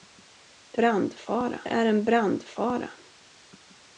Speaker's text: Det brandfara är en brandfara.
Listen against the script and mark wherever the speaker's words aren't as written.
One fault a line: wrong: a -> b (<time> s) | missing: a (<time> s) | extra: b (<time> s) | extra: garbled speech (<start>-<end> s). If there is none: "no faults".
no faults